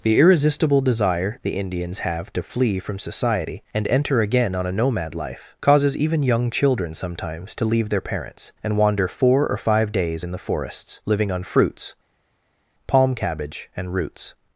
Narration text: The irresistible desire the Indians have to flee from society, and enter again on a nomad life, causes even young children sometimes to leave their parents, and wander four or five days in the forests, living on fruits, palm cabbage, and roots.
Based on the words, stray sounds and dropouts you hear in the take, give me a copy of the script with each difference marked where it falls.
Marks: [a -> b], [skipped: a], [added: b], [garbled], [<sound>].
The irresistible desire the Indians have to flee from society, and enter again on a nomad life, causes even young children sometimes to leave their parents, and wander four or five days in the forests, living on fruits, palm cabbage, and roots.